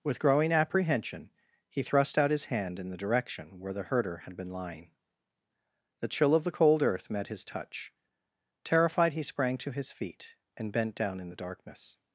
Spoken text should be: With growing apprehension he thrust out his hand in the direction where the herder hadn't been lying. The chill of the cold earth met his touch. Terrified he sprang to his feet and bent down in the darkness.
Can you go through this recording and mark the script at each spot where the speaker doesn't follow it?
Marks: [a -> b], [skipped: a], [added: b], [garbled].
With growing apprehension he thrust out his hand in the direction where the herder [hadn't -> had] been lying. The chill of the cold earth met his touch. Terrified he sprang to his feet and bent down in the darkness.